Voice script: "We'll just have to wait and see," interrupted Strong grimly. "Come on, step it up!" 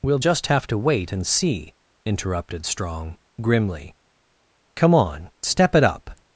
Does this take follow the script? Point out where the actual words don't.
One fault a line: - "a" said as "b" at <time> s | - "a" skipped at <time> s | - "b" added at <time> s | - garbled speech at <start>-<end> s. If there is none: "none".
none